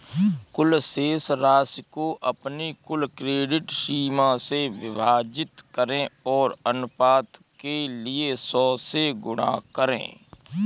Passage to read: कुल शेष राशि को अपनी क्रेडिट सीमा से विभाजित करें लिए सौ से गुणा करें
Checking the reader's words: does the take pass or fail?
fail